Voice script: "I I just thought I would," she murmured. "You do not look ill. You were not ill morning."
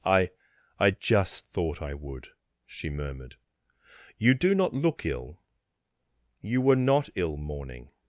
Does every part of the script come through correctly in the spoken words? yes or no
yes